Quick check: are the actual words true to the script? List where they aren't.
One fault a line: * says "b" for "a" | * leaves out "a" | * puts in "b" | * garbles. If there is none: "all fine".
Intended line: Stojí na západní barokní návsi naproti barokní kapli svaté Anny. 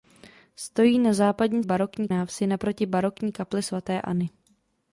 all fine